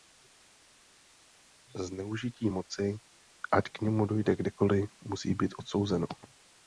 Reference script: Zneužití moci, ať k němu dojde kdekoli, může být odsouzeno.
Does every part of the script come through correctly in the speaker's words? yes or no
no